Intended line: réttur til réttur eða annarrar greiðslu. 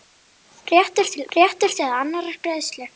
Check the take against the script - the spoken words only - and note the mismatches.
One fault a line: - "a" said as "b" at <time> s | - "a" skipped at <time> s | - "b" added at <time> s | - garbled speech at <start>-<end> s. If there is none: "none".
none